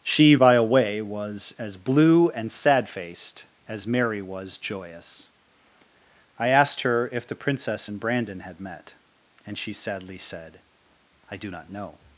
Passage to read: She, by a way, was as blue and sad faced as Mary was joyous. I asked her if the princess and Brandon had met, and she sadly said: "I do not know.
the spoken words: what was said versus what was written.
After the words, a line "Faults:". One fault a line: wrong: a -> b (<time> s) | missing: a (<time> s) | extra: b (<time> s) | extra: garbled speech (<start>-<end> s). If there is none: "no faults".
She, by a way, was as blue and sad faced as Mary was joyous. I asked her if the princess and Brandon had met, and she sadly said: "I do not know.
Faults:
no faults